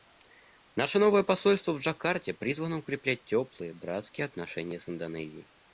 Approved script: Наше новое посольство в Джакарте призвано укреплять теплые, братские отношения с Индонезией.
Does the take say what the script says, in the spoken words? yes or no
yes